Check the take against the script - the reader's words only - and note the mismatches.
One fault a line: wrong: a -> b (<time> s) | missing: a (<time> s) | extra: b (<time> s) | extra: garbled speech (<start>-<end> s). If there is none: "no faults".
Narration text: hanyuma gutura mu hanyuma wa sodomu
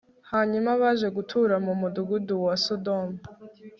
extra: baje (0.8 s)
wrong: hanyuma -> mudugudu (1.8 s)